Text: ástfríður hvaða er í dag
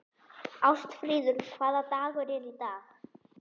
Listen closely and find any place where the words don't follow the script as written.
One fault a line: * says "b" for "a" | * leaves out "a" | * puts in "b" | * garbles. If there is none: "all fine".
* puts in "dagur"